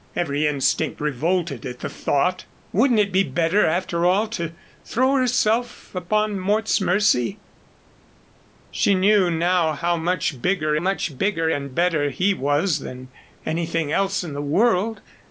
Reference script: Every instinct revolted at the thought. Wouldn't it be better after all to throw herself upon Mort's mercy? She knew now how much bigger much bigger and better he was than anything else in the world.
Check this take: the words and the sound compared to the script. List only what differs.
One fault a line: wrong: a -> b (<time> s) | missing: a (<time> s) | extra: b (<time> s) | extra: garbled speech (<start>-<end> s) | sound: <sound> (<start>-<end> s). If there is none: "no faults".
no faults